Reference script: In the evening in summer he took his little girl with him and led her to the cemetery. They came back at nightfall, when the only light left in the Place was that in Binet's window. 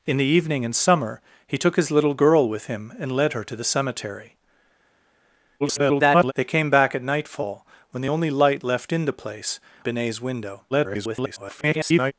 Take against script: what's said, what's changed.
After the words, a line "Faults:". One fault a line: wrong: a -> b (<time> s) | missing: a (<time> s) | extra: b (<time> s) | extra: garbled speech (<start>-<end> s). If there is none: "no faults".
In the evening in summer he took his little girl with him and led her to the cemetery. [garbled] They came back at nightfall, when the only light left in the Place Binet's window. [garbled]
Faults:
extra: garbled speech (5.6-6.3 s)
missing: was that in (9.6 s)
extra: garbled speech (10.7-12.1 s)